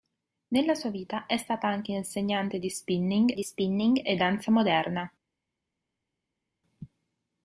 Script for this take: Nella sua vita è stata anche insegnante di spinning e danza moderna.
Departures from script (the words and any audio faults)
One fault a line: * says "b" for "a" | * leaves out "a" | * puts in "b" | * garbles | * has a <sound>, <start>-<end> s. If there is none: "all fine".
* puts in "di spinning"